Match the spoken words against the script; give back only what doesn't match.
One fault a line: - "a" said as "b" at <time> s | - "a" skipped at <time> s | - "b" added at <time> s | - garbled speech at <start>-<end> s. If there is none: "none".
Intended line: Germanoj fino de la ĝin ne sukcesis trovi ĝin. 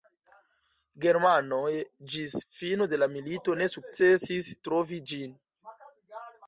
- "ĝis" added at 2.1 s
- "ĝin" said as "milito" at 3.1 s